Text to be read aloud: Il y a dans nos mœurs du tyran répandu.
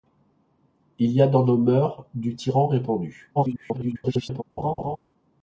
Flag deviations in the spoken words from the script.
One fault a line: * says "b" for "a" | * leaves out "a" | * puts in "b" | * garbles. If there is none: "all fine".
* garbles